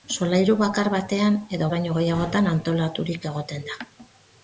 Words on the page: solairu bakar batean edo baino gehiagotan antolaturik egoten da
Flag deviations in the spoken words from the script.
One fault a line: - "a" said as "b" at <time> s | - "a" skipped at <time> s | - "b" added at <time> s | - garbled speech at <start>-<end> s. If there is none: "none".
none